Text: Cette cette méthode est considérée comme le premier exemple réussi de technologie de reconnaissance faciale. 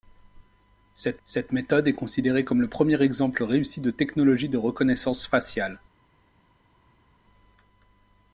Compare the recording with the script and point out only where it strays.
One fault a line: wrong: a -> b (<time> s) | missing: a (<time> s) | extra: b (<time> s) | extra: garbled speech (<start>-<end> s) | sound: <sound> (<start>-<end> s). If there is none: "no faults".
no faults